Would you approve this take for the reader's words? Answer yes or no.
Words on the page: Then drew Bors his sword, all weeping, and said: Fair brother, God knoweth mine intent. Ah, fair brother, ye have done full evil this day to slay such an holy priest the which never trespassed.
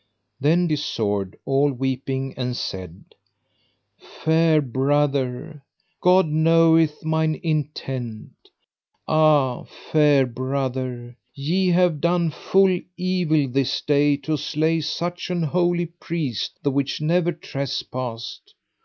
no